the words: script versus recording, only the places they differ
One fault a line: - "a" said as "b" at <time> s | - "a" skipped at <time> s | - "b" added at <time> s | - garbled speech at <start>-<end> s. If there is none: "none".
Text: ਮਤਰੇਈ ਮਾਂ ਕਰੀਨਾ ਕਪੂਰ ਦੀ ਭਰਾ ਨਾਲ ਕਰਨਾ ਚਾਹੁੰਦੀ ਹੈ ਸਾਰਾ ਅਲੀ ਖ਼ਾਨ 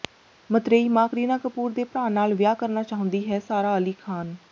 - "ਦੀ" said as "ਦੇ" at 1.7 s
- "ਵਿਆਹ" added at 2.3 s